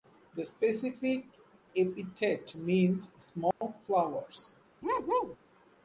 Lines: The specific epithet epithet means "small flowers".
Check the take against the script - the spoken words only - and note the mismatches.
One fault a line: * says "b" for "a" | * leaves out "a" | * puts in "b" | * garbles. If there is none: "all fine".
* leaves out "epithet"